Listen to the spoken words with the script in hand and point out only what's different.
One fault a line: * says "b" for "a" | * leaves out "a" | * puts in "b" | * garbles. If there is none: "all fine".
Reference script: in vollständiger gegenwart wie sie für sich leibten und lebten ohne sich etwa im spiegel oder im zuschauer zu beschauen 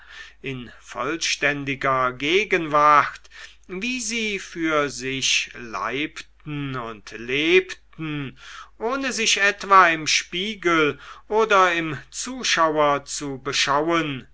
all fine